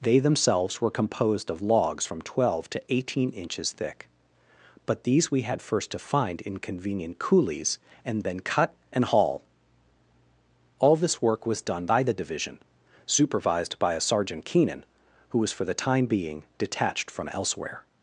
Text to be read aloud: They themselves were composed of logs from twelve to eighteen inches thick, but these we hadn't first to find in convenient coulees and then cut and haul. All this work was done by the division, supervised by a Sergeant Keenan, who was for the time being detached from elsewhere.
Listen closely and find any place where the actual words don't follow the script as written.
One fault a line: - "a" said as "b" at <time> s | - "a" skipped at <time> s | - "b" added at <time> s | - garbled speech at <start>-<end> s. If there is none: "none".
- "hadn't" said as "had" at 5.4 s